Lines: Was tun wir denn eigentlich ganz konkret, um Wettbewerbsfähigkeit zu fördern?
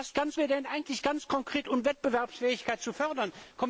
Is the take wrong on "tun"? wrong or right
wrong